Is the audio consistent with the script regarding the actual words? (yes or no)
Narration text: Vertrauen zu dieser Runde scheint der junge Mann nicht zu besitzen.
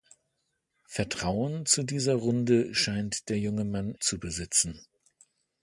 no